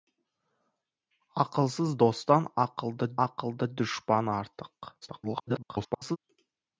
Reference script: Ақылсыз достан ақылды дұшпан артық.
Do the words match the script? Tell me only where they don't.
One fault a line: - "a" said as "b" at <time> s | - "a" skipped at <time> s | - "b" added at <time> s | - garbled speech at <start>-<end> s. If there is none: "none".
- "ақылды" added at 3.3 s
- garbled speech at 5.0-6.2 s